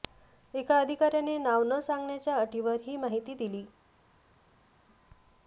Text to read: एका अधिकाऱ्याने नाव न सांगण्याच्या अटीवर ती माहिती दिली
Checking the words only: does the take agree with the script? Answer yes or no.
no